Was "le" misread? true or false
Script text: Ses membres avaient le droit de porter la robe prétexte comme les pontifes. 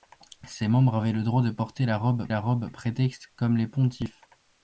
false